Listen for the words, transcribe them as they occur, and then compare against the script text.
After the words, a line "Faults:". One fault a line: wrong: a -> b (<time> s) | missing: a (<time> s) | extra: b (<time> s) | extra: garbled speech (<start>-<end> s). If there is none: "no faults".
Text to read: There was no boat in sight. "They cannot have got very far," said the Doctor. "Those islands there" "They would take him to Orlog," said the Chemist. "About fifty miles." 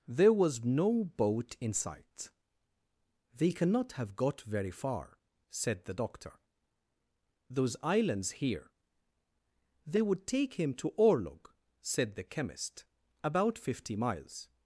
There was no boat in sight. "They cannot have got very far," said the Doctor. "Those islands here" "They would take him to Orlog," said the Chemist. "About fifty miles."
Faults:
wrong: there -> here (8.3 s)